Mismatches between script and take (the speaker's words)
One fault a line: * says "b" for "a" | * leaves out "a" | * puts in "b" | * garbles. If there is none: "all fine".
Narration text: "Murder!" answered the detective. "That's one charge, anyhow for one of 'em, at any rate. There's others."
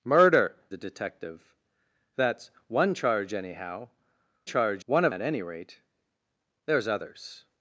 * leaves out "answered"
* says "charge" for "for"
* leaves out "em"